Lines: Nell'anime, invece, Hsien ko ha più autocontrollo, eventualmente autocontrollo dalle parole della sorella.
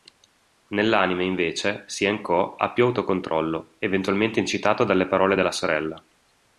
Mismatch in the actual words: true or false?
true